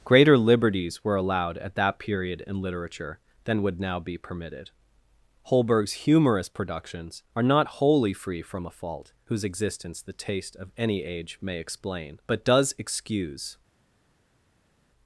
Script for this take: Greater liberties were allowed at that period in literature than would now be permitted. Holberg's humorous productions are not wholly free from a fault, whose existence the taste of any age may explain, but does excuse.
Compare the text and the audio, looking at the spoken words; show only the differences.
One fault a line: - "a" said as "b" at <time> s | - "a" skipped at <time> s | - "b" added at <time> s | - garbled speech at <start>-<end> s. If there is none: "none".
none